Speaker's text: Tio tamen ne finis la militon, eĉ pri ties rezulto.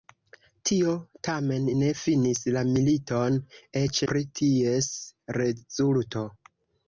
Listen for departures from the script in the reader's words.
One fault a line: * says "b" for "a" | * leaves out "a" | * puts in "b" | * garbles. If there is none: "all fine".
all fine